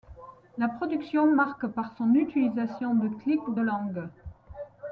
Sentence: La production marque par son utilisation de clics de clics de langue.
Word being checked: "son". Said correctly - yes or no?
yes